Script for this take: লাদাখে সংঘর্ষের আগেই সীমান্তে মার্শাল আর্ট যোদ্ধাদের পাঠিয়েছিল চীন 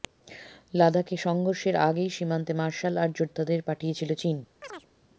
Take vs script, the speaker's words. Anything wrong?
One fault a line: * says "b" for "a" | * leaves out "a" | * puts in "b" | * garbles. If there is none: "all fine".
all fine